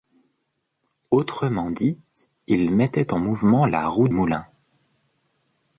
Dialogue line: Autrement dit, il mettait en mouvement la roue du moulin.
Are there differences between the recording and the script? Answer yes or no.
yes